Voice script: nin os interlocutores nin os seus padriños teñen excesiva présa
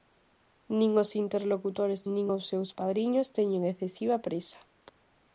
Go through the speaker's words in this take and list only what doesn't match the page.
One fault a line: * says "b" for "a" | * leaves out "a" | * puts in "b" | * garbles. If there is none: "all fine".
all fine